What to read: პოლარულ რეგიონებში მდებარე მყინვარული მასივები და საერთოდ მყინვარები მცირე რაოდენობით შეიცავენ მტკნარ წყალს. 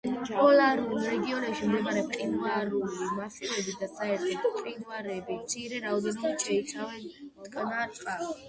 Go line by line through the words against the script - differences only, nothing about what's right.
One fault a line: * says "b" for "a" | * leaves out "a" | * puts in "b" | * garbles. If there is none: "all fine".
all fine